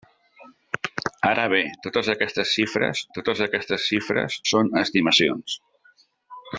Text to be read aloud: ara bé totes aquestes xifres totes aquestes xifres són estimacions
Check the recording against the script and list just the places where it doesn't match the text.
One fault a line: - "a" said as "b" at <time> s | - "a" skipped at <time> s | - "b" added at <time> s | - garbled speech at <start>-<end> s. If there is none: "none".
none